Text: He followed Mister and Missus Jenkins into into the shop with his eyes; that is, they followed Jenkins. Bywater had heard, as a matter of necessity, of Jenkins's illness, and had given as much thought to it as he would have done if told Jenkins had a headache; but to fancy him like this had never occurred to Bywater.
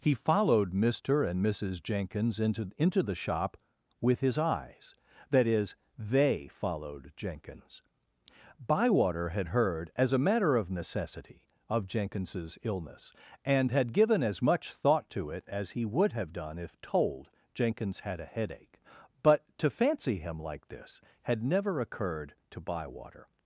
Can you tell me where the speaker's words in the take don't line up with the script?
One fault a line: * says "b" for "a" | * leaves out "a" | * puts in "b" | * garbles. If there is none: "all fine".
all fine